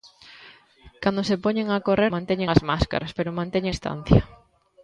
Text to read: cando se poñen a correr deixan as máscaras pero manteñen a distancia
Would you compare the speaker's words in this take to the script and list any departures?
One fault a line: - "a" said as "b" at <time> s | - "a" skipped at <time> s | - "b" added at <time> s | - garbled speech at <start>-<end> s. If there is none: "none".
- "deixan" said as "manteñen" at 2.1 s
- "a" skipped at 3.7 s